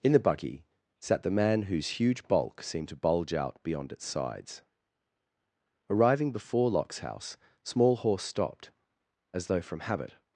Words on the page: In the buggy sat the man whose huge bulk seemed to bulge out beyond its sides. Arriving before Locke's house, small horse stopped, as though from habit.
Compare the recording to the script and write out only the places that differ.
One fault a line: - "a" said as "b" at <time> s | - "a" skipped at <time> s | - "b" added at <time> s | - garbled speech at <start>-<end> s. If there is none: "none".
none